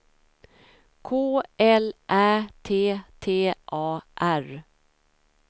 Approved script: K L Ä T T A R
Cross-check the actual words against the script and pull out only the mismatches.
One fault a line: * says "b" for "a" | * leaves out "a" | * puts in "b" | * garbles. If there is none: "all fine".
all fine